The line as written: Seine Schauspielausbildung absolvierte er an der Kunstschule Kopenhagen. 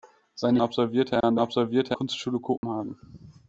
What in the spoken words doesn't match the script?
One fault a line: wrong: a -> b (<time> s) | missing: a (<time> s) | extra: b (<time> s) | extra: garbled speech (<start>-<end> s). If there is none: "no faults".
missing: Schauspielausbildung (0.6 s)
wrong: der -> absolvierte (1.4 s)